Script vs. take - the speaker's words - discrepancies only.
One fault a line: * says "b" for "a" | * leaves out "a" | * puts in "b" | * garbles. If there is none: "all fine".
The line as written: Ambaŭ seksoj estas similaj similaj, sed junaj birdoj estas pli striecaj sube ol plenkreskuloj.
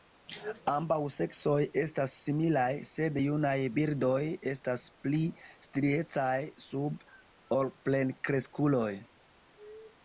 * leaves out "similaj"